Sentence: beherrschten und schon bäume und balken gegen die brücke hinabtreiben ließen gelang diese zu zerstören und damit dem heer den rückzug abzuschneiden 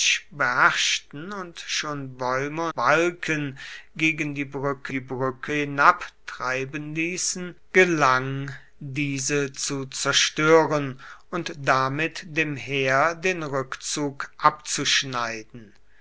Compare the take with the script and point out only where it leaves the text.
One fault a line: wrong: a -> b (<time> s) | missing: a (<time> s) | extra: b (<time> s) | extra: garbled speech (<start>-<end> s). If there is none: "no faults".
missing: und (2.7 s)
extra: die brücke (4.9 s)